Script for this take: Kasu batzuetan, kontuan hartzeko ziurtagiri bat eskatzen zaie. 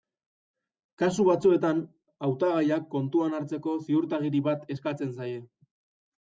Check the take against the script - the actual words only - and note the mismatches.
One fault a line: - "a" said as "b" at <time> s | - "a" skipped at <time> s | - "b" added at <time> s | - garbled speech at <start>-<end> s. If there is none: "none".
- "hautagaiak" added at 2.3 s